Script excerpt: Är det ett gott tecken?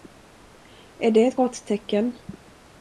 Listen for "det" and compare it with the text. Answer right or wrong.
right